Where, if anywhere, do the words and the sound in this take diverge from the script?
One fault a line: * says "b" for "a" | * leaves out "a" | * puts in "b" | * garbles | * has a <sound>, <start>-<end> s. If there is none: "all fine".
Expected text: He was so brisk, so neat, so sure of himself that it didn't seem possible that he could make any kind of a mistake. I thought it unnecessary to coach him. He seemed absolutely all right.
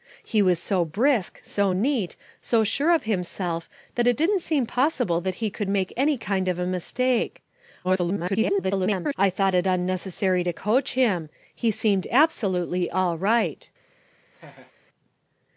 * garbles
* has a laugh, 14.3-14.7 s